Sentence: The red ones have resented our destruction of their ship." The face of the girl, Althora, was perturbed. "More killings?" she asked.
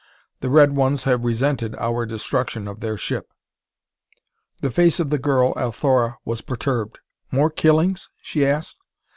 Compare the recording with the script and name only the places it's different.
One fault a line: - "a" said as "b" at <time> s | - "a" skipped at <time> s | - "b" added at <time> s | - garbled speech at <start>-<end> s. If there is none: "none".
none